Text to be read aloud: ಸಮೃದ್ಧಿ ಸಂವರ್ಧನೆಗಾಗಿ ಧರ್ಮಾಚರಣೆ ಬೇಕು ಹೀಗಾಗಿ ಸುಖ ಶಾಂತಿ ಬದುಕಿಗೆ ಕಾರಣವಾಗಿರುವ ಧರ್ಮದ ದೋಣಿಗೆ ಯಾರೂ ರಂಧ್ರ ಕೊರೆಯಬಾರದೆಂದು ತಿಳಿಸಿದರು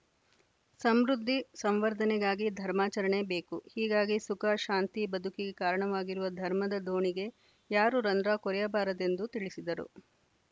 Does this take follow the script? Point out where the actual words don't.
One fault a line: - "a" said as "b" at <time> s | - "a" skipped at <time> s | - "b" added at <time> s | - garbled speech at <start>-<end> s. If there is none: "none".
none